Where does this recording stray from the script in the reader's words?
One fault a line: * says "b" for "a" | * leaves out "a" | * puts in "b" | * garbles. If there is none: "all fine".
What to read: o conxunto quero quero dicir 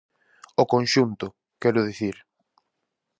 * leaves out "quero"